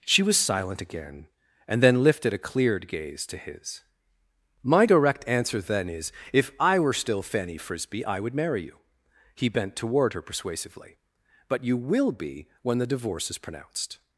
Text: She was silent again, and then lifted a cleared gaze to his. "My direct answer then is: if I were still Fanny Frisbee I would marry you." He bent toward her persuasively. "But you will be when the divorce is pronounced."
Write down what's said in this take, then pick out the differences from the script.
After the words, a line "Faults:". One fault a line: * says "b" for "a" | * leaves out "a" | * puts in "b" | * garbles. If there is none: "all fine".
She was silent again, and then lifted a cleared gaze to his. "My direct answer then is: if I were still Fanny Frisbee I would marry you." He bent toward her persuasively. "But you will be when the divorce is pronounced."
Faults:
all fine